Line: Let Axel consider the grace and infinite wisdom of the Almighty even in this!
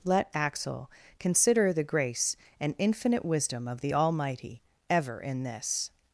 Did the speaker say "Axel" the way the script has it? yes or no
yes